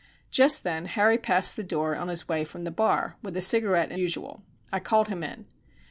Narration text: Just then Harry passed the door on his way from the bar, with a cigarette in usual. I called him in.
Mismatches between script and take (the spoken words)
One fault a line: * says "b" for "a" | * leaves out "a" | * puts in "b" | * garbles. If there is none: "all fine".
all fine